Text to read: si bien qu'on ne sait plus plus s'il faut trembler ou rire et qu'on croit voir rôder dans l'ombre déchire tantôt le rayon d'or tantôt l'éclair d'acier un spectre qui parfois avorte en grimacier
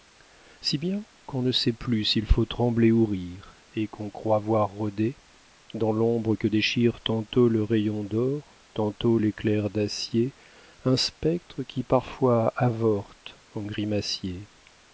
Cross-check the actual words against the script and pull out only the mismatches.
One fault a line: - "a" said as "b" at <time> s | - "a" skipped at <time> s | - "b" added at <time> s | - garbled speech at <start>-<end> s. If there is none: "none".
- "plus" skipped at 2.0 s
- "que" added at 6.3 s